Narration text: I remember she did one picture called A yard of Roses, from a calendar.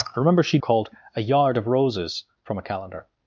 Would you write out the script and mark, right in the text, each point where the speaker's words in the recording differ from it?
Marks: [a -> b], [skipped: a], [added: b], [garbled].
I remember she [skipped: did one picture] called A yard of Roses, from a calendar.